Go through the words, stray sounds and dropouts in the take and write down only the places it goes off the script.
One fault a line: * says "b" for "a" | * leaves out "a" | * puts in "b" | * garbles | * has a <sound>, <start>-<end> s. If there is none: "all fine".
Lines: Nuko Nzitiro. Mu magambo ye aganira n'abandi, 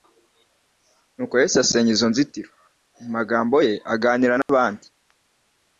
* puts in "Yesu asenya izo"
* has a dropout, 4.4-4.5 s